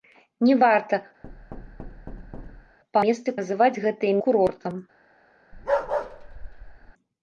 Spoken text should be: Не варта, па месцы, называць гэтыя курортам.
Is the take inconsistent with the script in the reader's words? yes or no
no